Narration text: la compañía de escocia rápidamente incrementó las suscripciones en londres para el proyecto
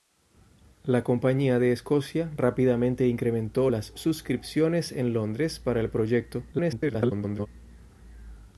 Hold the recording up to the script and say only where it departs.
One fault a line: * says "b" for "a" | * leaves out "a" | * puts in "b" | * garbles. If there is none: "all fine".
* garbles